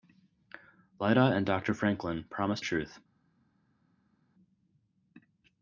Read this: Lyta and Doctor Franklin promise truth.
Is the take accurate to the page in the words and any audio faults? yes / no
yes